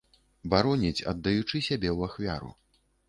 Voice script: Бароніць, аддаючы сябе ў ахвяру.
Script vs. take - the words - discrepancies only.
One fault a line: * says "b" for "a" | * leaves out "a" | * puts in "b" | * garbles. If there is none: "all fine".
all fine